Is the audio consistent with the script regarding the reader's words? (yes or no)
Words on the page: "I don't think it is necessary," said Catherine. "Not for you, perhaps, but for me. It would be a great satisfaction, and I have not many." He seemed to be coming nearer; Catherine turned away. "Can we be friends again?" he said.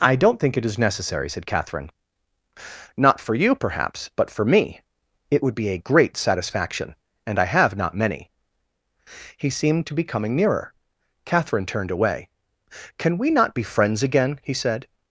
no